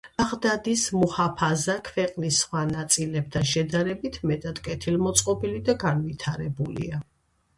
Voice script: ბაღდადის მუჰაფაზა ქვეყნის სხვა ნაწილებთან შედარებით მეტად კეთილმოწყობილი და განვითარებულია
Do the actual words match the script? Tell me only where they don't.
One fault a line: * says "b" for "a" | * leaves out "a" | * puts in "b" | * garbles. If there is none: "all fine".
all fine